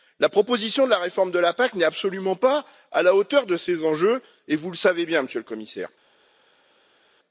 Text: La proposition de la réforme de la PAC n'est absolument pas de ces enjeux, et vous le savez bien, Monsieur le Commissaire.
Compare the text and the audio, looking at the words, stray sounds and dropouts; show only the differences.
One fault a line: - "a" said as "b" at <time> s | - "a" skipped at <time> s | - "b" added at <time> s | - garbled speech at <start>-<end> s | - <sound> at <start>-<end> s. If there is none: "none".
- "à la hauteur" added at 2.9 s